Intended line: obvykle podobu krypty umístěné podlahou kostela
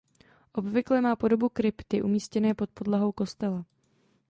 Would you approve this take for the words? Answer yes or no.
no